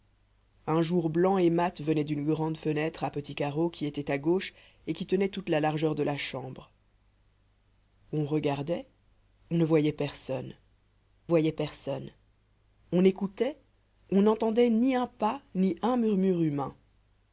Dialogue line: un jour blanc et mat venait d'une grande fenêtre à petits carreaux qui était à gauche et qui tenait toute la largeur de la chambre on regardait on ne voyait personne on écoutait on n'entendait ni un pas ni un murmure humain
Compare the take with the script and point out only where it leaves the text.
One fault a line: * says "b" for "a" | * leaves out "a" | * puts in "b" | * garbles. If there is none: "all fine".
* puts in "voyait personne"